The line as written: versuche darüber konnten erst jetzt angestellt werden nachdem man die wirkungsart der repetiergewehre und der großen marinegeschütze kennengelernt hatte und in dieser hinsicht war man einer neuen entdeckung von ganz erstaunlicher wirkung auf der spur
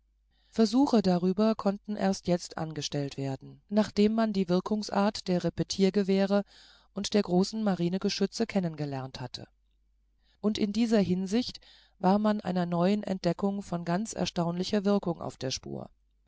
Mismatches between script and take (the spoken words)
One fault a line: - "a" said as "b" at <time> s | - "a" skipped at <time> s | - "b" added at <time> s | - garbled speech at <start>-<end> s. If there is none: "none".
none